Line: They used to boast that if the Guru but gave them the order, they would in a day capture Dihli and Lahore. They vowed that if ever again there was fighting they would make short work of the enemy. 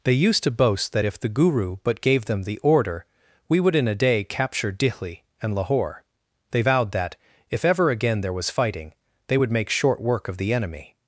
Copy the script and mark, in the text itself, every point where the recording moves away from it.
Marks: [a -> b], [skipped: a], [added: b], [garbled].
They used to boast that if the Guru but gave them the order, [they -> we] would in a day capture Dihli and Lahore. They vowed that if ever again there was fighting they would make short work of the enemy.